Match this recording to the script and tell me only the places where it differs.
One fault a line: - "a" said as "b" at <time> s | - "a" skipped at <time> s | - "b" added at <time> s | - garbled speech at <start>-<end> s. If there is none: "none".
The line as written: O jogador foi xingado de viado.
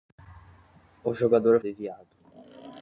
- "foi xingado" skipped at 1.6 s